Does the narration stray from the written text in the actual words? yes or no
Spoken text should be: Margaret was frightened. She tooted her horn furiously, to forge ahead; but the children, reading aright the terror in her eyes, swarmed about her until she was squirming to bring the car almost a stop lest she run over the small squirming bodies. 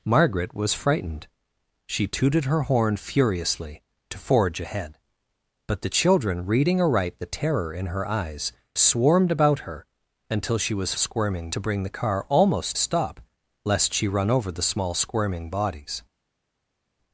no